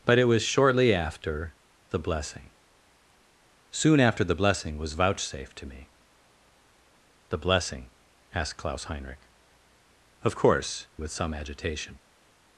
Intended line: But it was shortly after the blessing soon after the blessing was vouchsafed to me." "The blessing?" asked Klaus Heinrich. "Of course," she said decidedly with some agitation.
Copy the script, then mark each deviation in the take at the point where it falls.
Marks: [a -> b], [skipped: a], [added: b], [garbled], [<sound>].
But it was shortly after the blessing soon after the blessing was vouchsafed to me." "The blessing?" asked Klaus Heinrich. "Of course," [skipped: she said decidedly] with some agitation.